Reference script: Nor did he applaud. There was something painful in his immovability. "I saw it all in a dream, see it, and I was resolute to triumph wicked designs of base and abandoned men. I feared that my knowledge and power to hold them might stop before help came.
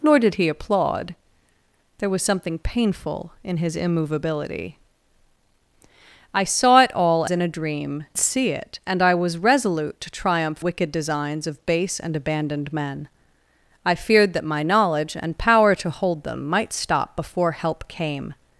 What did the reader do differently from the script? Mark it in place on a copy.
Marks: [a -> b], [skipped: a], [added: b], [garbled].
Nor did he applaud. There was something painful in his immovability. "I saw it all in a dream, see it, and I was resolute to triumph wicked designs of base and abandoned men. I feared that my knowledge and power to hold them might stop before help came.